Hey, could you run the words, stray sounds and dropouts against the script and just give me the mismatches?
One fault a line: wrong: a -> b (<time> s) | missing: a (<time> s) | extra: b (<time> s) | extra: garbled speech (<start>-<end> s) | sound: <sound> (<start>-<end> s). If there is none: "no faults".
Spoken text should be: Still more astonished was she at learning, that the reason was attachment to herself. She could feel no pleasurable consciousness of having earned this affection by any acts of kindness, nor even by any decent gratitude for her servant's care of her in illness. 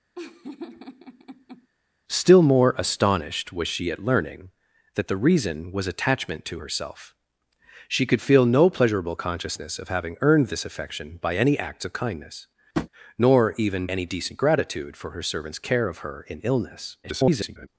sound: laugh (0.1-1.7 s)
sound: tap (12.7-12.9 s)
missing: by (13.9 s)
extra: garbled speech (17.0-17.7 s)